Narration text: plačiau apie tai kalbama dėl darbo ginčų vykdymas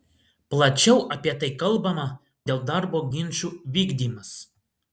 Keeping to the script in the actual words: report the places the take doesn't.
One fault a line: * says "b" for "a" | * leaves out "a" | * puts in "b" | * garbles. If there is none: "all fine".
all fine